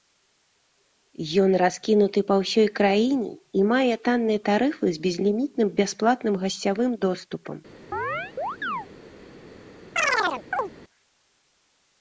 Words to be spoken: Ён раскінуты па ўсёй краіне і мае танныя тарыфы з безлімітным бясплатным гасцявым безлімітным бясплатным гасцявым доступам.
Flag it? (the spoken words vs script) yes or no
yes